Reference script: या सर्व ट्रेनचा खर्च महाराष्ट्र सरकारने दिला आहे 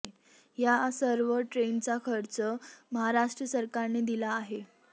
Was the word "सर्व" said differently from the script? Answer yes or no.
no